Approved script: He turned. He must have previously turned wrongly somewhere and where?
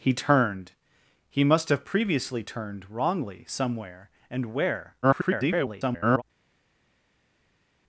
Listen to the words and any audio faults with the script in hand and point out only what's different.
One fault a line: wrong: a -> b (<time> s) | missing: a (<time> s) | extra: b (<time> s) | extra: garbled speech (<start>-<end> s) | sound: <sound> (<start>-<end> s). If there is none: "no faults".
extra: garbled speech (5.0-6.2 s)